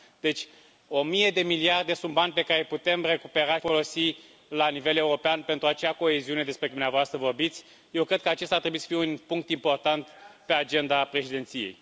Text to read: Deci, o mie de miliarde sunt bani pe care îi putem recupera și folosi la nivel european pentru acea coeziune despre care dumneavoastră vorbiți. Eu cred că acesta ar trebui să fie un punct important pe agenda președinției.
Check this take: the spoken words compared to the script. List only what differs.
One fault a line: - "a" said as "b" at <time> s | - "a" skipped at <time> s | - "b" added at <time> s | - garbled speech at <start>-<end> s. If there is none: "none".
- "și" skipped at 3.6 s
- "care" skipped at 6.7 s